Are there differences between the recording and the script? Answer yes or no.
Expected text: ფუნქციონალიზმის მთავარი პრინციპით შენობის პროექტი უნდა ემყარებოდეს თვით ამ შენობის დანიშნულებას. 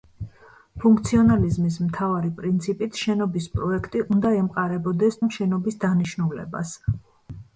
yes